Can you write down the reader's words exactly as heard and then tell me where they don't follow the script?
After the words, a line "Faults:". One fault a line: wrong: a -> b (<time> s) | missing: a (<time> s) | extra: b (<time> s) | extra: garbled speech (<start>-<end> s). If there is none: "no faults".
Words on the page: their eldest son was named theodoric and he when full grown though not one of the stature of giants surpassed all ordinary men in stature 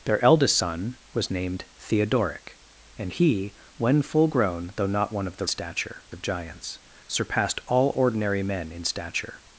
their eldest son was named theodoric and he when full grown though not one of the stature of giants surpassed all ordinary men in stature
Faults:
no faults